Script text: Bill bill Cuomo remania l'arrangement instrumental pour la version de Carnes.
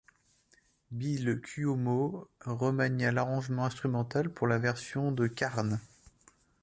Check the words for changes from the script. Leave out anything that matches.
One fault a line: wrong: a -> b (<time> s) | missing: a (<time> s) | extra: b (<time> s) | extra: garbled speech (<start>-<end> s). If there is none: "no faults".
missing: bill (1.4 s)